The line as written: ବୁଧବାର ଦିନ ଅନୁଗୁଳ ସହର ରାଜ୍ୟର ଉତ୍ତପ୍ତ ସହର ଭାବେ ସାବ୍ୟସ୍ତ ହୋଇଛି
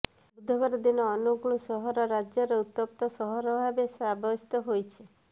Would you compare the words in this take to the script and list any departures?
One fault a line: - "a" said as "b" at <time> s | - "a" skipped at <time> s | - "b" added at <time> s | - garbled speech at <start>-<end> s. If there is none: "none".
none